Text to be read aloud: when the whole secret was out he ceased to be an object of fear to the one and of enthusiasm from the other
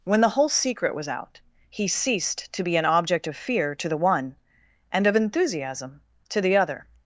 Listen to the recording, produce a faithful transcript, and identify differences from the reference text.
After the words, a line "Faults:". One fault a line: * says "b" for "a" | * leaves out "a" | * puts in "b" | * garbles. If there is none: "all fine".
when the whole secret was out he ceased to be an object of fear to the one and of enthusiasm to the other
Faults:
* says "to" for "from"